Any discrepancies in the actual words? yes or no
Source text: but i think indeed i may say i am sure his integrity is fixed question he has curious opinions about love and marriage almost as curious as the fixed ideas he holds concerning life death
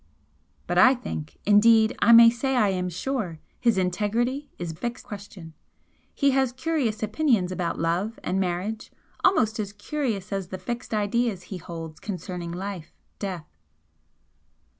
no